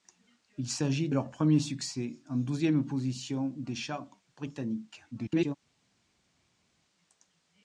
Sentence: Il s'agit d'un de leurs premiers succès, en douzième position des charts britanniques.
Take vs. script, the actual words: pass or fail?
fail